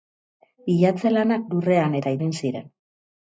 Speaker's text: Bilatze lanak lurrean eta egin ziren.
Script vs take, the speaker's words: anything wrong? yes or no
no